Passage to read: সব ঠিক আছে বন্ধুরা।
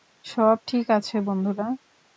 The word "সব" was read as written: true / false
true